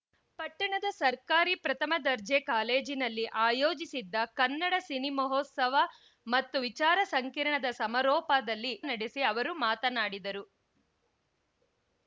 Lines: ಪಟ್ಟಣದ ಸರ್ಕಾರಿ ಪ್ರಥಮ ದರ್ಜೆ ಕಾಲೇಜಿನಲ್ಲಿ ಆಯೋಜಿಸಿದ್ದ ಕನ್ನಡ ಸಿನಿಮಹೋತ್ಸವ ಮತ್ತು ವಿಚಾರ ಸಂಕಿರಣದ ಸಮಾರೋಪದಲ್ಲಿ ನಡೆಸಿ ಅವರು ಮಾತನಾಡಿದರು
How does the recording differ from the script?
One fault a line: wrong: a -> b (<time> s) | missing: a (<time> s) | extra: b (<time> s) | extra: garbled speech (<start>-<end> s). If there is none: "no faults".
no faults